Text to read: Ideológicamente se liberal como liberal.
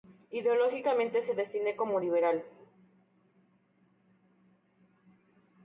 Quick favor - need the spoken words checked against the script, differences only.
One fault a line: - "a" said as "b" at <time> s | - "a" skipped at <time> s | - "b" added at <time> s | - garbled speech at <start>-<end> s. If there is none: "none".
- "liberal" said as "define" at 1.4 s